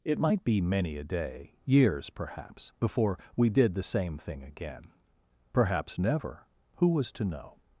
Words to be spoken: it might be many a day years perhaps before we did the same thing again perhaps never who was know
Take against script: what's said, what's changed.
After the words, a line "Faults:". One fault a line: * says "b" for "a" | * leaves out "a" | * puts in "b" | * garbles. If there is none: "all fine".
it might be many a day years perhaps before we did the same thing again perhaps never who was to know
Faults:
* puts in "to"